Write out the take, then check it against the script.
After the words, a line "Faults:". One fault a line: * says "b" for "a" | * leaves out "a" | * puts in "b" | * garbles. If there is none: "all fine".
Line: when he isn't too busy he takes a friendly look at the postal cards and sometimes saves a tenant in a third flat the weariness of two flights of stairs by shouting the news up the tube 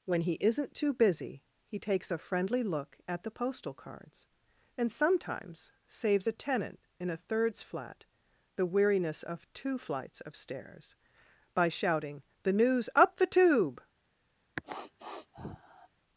when he isn't too busy he takes a friendly look at the postal cards and sometimes saves a tenant in a thirds flat the weariness of two flights of stairs by shouting the news up the tube
Faults:
* says "thirds" for "third"